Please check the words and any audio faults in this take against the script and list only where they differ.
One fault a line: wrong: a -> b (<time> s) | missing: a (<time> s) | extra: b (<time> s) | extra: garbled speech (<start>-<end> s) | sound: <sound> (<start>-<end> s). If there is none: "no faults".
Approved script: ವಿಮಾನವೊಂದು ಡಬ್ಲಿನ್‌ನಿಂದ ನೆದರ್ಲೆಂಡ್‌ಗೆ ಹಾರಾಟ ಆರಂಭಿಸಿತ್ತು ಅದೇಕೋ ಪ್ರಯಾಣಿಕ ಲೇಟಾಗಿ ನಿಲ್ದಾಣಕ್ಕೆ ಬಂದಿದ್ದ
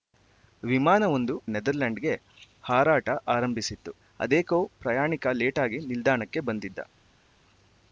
missing: ಡಬ್ಲಿನ್‌ನಿಂದ (1.4 s)